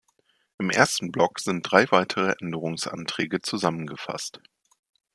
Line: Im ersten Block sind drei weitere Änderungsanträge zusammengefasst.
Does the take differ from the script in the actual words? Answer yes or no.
no